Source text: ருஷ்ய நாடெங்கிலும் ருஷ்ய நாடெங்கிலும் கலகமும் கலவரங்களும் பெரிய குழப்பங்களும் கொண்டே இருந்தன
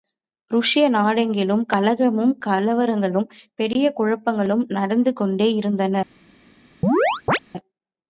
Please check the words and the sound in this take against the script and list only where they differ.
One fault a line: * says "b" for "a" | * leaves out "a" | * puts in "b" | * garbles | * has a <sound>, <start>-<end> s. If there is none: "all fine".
* leaves out "ருஷ்ய நாடெங்கிலும்"
* puts in "நடந்து"
* has a chirp, 6.8-7.4 s